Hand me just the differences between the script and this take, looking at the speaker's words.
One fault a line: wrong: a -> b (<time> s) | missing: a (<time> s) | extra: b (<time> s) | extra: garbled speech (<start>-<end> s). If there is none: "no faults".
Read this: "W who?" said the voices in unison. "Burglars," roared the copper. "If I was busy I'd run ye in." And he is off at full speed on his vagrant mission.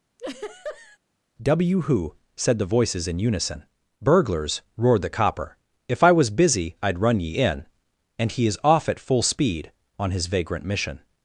no faults